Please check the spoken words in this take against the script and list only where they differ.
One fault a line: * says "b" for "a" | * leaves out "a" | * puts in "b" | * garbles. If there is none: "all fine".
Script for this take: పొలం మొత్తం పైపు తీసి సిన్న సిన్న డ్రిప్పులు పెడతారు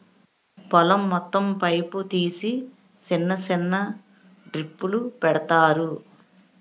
all fine